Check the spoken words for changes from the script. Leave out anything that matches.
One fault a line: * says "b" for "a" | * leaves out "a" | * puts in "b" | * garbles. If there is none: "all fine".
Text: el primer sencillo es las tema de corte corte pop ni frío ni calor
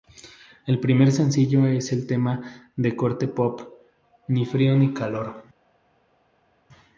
* says "el" for "las"
* leaves out "corte"